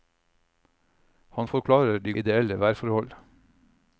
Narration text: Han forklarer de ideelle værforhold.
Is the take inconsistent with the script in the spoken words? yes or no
no